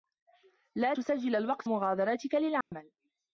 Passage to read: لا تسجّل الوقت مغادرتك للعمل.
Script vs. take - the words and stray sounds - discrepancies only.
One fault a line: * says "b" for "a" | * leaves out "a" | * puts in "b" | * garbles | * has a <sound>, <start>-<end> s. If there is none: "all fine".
* has a dropout, 2.6-2.7 s